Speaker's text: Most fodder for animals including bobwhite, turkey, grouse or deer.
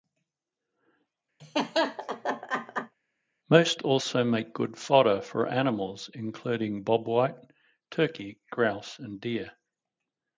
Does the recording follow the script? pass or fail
fail